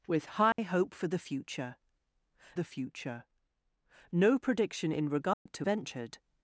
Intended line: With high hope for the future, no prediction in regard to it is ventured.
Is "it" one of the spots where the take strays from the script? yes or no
yes